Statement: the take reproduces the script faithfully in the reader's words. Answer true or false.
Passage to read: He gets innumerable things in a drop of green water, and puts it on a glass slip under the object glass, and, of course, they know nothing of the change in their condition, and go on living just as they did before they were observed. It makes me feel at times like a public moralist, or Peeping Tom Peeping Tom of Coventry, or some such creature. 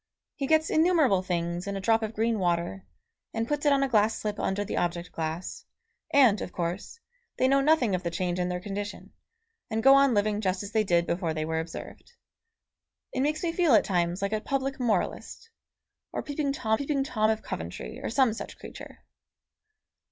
true